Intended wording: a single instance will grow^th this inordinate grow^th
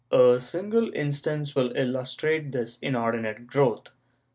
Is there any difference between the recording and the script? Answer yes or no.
yes